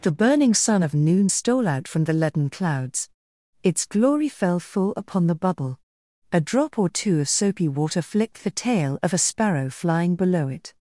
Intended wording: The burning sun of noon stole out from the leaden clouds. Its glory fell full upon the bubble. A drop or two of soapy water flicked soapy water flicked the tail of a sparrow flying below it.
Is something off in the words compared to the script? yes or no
yes